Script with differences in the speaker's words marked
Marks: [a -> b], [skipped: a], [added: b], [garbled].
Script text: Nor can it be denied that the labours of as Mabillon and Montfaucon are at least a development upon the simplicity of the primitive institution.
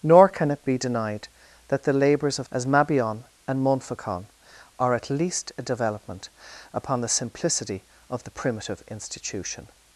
Nor can it be denied that the labours of as Mabillon and Montfaucon are at least a development upon the simplicity of the primitive institution.